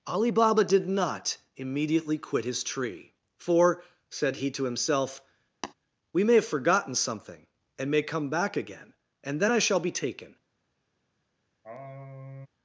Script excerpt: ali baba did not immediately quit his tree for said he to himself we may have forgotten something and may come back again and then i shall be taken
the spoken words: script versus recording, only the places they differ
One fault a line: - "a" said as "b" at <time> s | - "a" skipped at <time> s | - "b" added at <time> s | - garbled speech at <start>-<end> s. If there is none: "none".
none